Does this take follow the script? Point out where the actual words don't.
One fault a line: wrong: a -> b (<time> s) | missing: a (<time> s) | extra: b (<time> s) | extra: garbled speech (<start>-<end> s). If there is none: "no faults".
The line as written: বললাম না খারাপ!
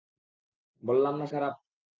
no faults